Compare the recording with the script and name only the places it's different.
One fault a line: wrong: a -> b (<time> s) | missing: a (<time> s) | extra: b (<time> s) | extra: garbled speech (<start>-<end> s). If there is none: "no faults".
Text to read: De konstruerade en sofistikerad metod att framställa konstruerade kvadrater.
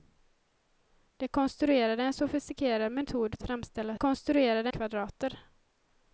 no faults